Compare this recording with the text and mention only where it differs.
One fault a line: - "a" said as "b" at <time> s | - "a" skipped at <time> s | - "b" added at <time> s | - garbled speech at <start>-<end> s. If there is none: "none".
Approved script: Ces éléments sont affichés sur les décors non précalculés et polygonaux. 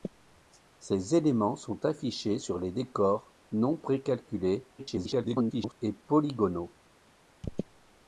- garbled speech at 4.8-5.8 s